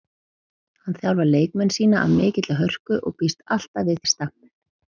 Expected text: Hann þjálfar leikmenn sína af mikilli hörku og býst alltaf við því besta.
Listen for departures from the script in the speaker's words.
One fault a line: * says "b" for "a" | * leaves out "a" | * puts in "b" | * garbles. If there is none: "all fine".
* leaves out "því"